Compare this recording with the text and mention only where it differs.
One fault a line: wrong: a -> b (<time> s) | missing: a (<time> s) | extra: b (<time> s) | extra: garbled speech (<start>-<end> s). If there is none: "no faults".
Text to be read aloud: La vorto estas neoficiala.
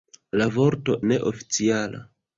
missing: estas (0.9 s)